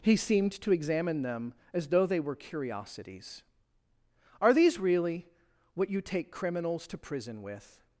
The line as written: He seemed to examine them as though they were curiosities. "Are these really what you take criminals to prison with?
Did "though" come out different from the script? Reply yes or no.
no